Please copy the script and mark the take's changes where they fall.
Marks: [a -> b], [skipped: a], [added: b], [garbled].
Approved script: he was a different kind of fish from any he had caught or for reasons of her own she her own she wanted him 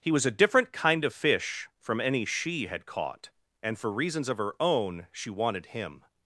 he was a different kind of fish from any [he -> she] had caught [or -> and] for reasons of her own she [skipped: her own she] wanted him